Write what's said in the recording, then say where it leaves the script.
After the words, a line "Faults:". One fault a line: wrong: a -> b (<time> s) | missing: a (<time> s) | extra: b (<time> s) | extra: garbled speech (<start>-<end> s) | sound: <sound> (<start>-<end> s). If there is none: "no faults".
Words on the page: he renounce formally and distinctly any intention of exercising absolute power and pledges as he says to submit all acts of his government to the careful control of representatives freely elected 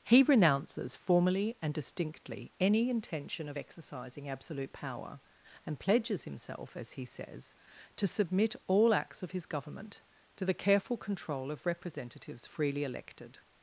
he renounces formally and distinctly any intention of exercising absolute power and pledges himself as he says to submit all acts of his government to the careful control of representatives freely elected
Faults:
wrong: renounce -> renounces (0.2 s)
extra: himself (6.2 s)